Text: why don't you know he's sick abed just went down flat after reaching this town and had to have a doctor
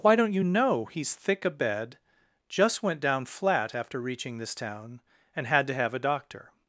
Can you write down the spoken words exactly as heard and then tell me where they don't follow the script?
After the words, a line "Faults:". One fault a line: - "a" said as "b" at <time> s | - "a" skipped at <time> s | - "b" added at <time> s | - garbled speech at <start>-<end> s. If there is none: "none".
why don't you know he's thick abed just went down flat after reaching this town and had to have a doctor
Faults:
- "sick" said as "thick" at 1.1 s